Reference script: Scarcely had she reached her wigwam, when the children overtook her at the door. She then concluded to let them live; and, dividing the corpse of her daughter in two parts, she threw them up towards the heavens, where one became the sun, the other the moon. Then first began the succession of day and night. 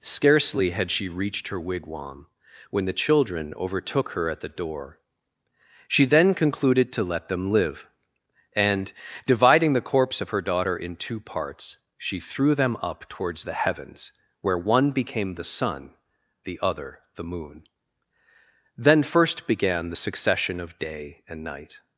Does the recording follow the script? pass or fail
pass